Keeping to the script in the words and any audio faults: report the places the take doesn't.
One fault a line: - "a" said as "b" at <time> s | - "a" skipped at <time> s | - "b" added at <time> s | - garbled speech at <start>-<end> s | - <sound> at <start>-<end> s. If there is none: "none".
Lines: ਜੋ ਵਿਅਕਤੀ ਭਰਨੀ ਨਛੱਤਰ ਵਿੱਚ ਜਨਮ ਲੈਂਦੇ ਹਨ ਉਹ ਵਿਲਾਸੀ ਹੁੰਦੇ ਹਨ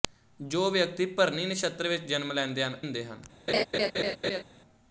- "ਉਹ ਵਿਲਾਸੀ" skipped at 2.8 s
- laugh at 3.5-4.4 s